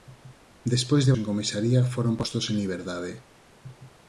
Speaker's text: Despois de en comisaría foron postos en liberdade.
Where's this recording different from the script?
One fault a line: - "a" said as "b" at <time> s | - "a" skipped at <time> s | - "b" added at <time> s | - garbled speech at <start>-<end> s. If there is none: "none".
none